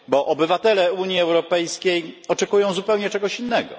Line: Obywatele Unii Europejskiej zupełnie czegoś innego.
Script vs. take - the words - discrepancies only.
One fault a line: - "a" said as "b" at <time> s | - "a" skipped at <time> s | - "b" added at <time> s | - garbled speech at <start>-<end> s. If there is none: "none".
- "oczekują" added at 2.3 s